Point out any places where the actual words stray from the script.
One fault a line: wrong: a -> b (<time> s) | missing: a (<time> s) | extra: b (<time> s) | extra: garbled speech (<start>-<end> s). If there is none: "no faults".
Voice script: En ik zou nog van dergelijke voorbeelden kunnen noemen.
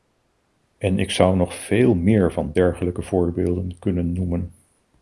extra: veel meer (1.5 s)